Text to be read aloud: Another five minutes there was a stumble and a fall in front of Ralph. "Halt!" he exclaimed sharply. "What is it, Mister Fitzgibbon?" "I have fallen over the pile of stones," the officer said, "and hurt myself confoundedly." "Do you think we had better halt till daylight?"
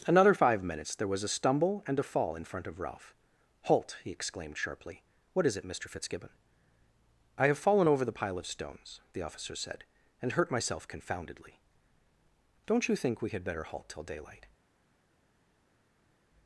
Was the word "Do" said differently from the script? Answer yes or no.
yes